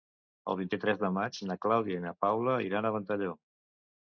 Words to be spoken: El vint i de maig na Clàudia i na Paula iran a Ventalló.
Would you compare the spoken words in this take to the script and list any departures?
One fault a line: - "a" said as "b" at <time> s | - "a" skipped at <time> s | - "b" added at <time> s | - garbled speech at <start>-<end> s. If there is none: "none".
- "tres" added at 0.8 s